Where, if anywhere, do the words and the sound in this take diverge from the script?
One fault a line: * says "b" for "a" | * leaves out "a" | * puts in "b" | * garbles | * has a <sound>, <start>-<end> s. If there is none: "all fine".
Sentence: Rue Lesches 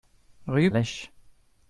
all fine